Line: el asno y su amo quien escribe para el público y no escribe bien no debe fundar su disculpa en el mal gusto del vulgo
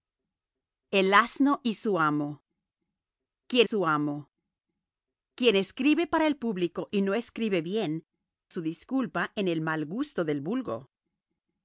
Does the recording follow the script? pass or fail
fail